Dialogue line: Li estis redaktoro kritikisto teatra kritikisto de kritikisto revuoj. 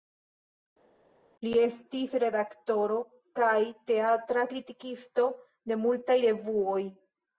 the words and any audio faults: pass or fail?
fail